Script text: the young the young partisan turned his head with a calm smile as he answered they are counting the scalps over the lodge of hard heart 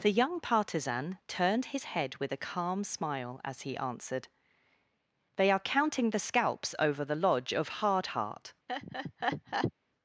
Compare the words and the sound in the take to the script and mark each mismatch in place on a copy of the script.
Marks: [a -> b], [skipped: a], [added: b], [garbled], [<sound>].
the young [skipped: the young] partisan turned his head with a calm smile as he answered they are counting the scalps over the lodge of hard heart [laugh]